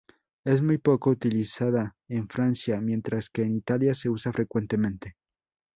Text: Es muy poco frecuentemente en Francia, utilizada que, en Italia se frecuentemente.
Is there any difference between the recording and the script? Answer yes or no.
yes